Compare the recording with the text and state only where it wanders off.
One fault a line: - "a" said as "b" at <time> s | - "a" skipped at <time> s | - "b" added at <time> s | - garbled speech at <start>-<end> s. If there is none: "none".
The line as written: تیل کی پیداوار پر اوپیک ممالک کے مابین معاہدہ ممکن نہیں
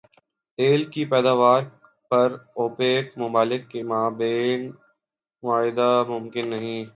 none